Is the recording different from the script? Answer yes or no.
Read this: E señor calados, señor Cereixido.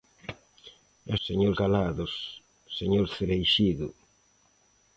no